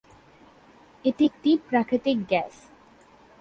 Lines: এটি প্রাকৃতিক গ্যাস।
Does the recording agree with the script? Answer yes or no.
no